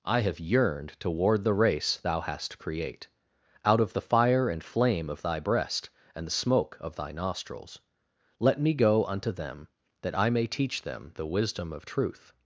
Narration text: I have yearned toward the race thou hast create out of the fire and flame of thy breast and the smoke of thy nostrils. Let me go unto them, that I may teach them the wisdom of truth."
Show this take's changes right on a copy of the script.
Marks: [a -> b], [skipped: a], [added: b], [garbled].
I have yearned toward the race thou hast create out of the fire and flame of thy breast and the smoke of thy nostrils. Let me go unto them, that I may teach them the wisdom of truth."